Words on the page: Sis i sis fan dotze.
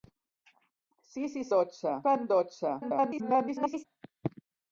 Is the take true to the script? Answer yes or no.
no